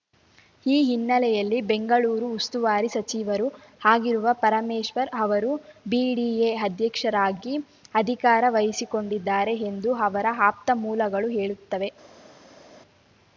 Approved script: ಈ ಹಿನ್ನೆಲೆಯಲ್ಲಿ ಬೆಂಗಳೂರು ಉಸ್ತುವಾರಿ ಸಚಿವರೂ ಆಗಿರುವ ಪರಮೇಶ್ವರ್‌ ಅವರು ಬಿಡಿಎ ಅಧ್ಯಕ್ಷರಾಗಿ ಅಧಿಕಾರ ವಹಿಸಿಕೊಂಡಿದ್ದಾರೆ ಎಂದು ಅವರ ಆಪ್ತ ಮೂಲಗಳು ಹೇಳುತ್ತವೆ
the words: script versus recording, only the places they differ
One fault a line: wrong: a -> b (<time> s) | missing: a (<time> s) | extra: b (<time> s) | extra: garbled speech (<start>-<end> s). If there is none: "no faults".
no faults